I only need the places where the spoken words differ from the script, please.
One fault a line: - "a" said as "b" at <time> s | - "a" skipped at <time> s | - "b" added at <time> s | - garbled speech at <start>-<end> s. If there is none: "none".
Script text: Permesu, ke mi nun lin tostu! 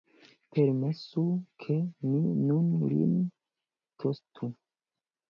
none